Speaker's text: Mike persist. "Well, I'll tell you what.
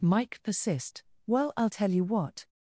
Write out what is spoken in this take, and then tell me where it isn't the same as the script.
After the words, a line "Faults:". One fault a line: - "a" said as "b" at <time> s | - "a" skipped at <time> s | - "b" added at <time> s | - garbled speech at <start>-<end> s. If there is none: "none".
Mike persist. "Well, I'll tell you what.
Faults:
none